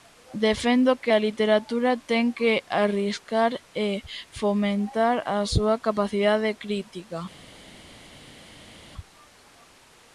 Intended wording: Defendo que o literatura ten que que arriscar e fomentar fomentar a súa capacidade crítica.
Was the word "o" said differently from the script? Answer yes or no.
yes